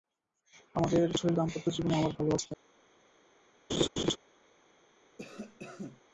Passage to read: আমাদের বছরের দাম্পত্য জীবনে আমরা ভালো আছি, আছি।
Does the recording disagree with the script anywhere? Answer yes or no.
no